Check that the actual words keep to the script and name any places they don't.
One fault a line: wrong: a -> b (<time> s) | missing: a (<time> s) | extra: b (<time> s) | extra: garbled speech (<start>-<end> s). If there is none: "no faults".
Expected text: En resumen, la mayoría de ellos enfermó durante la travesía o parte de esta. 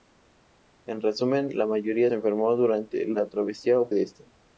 missing: de ellos (2.1 s)
missing: parte (3.9 s)